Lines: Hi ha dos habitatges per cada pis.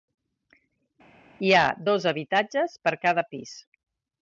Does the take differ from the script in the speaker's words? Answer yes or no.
no